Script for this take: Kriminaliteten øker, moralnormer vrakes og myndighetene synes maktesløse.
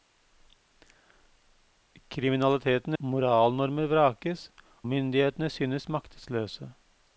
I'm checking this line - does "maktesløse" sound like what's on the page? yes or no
yes